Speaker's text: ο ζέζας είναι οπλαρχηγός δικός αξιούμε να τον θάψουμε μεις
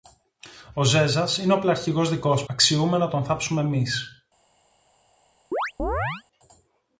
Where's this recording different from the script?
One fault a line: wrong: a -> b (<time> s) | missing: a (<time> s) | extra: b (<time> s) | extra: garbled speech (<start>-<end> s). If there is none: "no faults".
no faults